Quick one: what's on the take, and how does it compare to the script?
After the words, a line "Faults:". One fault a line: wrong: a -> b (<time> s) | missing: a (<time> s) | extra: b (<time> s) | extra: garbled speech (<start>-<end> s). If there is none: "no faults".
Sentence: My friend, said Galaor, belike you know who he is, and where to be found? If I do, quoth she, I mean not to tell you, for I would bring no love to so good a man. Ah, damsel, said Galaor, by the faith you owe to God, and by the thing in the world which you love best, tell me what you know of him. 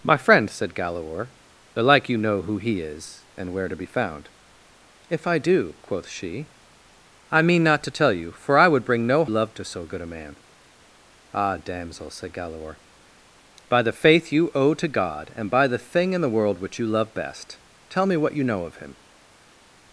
My friend, said Galaor, belike you know who he is, and where to be found? If I do, quoth she, I mean not to tell you, for I would bring no love to so good a man. Ah, damsel, said Galaor, by the faith you owe to God, and by the thing in the world which you love best, tell me what you know of him.
Faults:
no faults